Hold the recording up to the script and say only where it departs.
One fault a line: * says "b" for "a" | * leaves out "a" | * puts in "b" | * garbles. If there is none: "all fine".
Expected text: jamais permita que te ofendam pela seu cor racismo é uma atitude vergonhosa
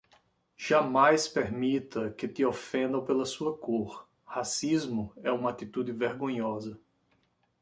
* says "sua" for "seu"